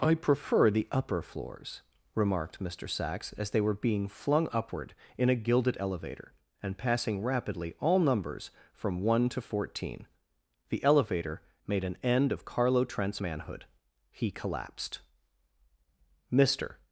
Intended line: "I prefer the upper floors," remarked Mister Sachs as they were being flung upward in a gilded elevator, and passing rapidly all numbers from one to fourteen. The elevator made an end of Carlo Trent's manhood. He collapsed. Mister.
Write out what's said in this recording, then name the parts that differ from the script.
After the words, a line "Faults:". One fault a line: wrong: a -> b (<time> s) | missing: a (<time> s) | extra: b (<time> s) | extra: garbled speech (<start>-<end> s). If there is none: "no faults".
"I prefer the upper floors," remarked Mister Sachs as they were being flung upward in a gilded elevator, and passing rapidly all numbers from one to fourteen. The elevator made an end of Carlo Trent's manhood. He collapsed. Mister.
Faults:
no faults